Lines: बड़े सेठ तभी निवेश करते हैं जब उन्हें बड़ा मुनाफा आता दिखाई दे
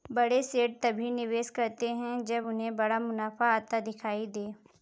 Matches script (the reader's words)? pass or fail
pass